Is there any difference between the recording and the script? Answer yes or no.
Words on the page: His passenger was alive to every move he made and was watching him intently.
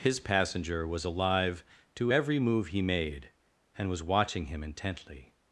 no